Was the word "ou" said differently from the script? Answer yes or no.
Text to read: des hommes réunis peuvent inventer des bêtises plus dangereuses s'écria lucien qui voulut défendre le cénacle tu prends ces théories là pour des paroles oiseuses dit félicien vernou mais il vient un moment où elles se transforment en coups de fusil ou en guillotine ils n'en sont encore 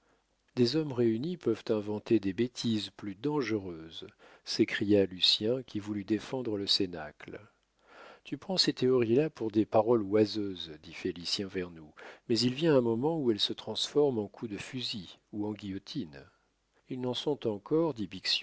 no